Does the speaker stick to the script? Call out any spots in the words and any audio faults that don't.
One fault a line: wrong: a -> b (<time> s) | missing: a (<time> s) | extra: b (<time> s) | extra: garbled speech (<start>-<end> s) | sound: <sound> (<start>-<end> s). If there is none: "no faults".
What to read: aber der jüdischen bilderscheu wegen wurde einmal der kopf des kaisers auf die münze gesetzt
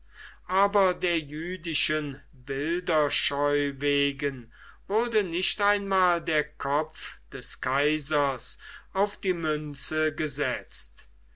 extra: nicht (5.2 s)